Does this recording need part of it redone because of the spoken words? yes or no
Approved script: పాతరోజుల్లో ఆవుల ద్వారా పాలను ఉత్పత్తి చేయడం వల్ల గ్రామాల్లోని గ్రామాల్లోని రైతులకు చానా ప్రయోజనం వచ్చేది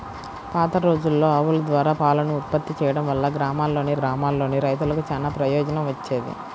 no